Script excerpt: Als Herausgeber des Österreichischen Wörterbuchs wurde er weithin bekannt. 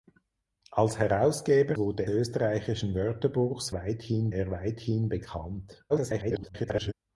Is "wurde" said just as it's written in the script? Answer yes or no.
no